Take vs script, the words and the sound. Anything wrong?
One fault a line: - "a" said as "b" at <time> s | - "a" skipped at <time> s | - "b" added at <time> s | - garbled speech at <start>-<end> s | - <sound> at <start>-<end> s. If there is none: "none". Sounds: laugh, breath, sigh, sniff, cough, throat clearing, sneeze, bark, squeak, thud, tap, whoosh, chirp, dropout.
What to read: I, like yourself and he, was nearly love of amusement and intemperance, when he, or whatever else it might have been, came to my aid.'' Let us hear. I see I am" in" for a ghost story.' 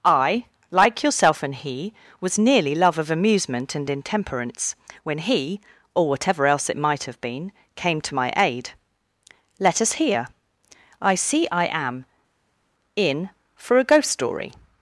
none